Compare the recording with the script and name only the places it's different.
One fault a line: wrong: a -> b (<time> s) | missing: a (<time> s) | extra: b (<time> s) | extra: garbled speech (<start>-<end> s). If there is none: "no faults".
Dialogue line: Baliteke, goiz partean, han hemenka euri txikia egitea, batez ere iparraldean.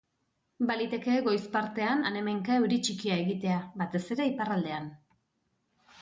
no faults